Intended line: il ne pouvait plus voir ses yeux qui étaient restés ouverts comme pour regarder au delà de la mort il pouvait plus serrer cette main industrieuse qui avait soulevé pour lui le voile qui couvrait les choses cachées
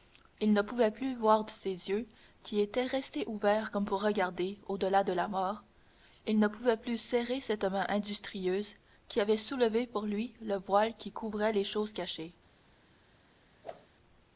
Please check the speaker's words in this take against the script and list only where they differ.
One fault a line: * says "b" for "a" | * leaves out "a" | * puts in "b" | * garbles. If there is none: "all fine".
* puts in "ne"